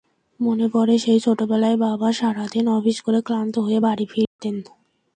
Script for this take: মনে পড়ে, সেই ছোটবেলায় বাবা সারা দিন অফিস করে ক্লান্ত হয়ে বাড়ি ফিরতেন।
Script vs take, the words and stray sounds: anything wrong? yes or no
yes